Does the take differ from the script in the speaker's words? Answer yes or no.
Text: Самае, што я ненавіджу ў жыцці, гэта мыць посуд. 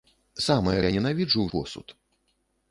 yes